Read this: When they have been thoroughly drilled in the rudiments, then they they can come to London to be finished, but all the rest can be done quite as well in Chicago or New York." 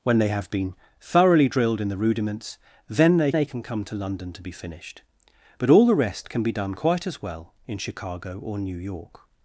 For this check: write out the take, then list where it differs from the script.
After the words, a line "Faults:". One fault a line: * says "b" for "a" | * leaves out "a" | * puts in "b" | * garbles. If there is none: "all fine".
When they have been thoroughly drilled in the rudiments, then they they can come to London to be finished, but all the rest can be done quite as well in Chicago or New York."
Faults:
all fine